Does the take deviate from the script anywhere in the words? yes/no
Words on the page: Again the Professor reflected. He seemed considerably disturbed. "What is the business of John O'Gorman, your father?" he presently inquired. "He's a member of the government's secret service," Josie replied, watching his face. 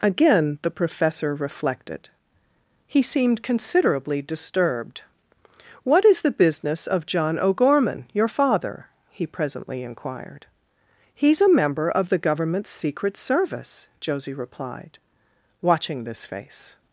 yes